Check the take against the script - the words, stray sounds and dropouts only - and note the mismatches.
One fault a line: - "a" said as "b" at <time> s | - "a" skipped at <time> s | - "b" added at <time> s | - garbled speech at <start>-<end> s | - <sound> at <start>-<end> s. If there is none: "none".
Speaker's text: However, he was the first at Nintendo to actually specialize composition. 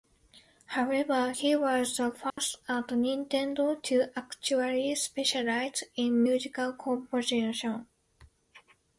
- dropout at 2.3-2.4 s
- "in musical" added at 6.0 s